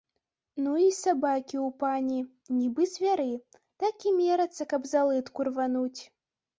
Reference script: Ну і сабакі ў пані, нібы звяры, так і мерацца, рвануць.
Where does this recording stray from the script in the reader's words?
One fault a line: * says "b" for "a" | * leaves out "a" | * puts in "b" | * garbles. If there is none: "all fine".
* puts in "каб за лытку"